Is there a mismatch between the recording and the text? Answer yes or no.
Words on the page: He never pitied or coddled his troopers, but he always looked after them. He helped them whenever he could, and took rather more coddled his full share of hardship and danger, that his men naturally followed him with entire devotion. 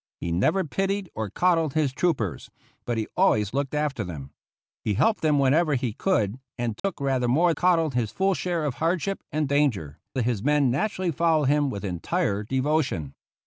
no